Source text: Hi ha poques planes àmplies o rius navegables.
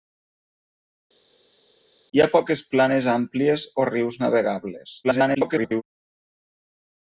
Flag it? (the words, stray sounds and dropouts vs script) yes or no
yes